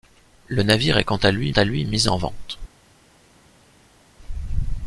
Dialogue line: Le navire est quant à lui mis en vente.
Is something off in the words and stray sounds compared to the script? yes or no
yes